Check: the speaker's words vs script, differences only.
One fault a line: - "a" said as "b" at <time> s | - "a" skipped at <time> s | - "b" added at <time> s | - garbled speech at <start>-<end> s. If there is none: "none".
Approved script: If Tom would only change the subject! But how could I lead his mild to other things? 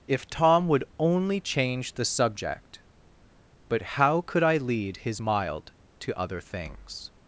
none